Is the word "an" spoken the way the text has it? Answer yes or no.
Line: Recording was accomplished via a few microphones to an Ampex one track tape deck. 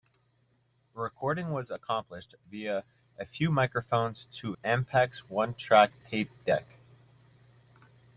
no